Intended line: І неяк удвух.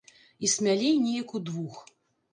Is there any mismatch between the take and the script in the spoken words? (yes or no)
yes